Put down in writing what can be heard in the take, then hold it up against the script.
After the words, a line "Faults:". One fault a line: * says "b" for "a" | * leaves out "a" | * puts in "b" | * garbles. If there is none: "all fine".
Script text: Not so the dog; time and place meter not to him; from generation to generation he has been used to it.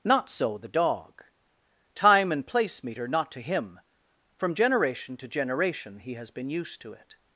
Not so the dog; time and place meter not to him; from generation to generation he has been used to it.
Faults:
all fine